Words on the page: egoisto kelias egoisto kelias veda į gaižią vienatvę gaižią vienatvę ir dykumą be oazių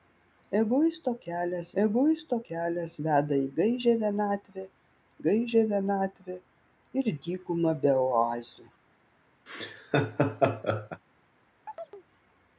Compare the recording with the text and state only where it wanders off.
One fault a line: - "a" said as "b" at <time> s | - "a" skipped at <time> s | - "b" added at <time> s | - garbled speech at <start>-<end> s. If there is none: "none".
none